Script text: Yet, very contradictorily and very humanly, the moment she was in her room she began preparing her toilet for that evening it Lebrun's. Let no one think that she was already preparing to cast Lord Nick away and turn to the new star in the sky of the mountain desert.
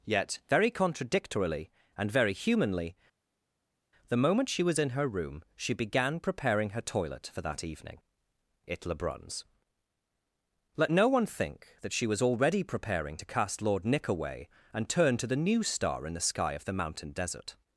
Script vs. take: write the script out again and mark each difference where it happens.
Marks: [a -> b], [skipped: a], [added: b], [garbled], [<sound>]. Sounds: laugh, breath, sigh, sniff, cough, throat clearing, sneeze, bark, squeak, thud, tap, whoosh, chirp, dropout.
Yet, very contradictorily and very humanly, the moment she was in her room she began preparing her toilet for that evening it Lebrun's. Let no one think that she was already preparing to cast Lord Nick away and turn to the new star in the sky of the mountain desert.